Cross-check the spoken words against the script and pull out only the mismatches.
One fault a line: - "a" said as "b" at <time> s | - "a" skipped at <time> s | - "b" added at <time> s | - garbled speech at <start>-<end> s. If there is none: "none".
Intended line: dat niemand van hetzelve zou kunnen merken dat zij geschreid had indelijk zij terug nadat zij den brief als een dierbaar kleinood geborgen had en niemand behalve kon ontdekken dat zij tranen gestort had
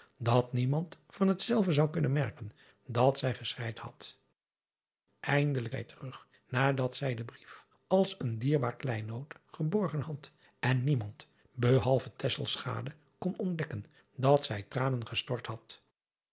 none